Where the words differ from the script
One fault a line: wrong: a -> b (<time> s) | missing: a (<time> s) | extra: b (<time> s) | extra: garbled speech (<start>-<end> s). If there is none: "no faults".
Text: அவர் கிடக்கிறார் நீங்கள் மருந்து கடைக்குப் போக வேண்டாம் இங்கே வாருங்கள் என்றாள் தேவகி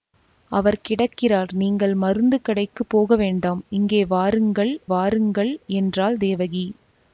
extra: வாருங்கள் (4.9 s)